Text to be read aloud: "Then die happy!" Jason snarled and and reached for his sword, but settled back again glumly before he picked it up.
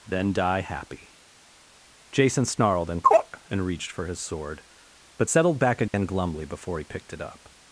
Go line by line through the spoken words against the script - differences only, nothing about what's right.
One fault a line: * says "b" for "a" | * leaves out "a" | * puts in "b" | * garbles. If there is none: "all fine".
all fine